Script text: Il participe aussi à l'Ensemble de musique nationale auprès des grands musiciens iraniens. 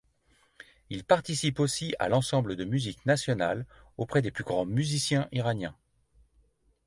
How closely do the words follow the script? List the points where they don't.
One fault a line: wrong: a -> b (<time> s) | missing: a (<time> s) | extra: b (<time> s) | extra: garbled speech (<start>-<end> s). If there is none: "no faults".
extra: plus (4.3 s)